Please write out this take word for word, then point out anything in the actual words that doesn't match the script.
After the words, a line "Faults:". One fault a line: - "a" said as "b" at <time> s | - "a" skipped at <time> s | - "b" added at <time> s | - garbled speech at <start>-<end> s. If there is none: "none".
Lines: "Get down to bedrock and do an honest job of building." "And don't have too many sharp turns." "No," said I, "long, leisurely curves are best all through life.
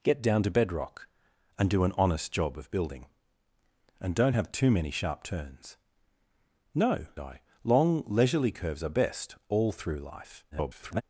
"Get down to bedrock and do an honest job of building." "And don't have too many sharp turns." "No," I, "long, leisurely curves are best all through life. [garbled]
Faults:
- "said" skipped at 7.1 s
- garbled speech at 10.5-11.0 s